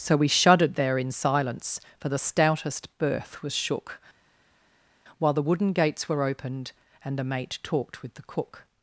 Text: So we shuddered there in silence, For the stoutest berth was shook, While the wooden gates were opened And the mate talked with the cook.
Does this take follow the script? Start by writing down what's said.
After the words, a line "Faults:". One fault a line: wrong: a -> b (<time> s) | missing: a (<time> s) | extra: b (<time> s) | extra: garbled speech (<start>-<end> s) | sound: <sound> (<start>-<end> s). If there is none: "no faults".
So we shuddered there in silence, For the stoutest berth was shook, While the wooden gates were opened And the mate talked with the cook.
Faults:
no faults